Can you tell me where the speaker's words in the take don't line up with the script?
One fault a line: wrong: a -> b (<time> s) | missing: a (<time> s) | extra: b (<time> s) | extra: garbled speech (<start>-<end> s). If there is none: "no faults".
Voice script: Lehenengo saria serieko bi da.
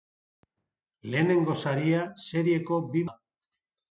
no faults